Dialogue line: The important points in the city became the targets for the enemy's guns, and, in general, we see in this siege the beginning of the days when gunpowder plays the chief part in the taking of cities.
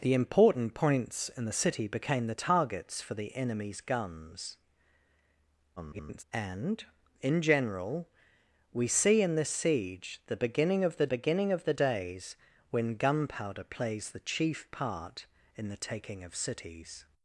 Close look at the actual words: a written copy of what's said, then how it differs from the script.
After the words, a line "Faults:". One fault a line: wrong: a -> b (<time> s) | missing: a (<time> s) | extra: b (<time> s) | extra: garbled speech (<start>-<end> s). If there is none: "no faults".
The important points in the city became the targets for the enemy's guns, [garbled] and, in general, we see in this siege the beginning of the beginning of the days when gunpowder plays the chief part in the taking of cities.
Faults:
extra: garbled speech (5.8-6.2 s)
extra: beginning of the (11.1 s)